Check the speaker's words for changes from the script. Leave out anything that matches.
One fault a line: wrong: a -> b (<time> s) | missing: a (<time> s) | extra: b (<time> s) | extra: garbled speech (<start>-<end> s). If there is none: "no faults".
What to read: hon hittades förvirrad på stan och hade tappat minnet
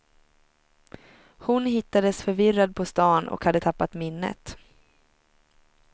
no faults